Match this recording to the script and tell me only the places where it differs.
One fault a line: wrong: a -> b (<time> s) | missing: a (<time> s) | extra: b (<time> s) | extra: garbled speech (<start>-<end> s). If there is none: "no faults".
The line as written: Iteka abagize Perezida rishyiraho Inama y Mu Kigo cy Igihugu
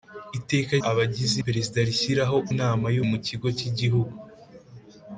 no faults